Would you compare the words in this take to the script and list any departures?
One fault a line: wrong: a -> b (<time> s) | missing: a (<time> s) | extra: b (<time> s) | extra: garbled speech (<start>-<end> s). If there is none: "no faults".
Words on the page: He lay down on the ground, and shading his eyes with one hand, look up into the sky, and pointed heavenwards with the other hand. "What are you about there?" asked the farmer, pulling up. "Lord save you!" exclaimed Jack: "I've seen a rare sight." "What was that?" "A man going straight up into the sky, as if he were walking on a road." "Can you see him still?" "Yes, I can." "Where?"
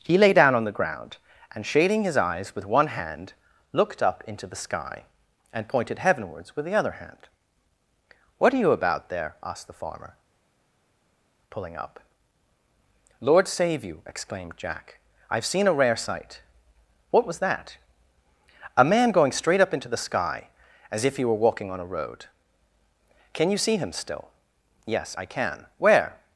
wrong: look -> looked (3.7 s)